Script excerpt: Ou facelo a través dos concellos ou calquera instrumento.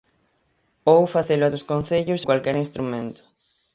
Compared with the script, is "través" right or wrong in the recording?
wrong